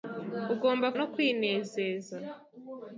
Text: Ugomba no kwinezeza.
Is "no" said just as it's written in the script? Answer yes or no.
yes